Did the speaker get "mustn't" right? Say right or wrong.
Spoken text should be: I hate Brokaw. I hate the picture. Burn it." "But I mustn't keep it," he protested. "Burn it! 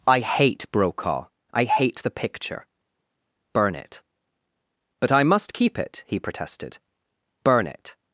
wrong